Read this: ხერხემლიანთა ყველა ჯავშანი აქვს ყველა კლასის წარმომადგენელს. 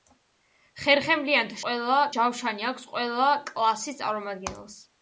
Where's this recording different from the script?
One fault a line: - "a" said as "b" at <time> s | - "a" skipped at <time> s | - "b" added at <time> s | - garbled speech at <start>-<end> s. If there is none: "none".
none